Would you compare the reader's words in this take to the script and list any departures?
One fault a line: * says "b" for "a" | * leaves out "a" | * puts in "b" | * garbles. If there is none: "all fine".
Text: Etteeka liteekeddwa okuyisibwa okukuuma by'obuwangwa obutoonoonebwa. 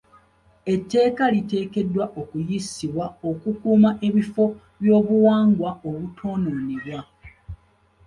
* puts in "ebifo"